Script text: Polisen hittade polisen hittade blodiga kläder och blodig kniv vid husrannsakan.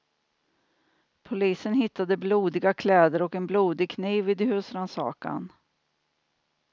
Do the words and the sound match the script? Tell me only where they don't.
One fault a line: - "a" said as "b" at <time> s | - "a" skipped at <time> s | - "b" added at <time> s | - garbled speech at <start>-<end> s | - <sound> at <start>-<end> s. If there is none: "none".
- "polisen hittade" skipped at 2.2 s
- "en" added at 3.4 s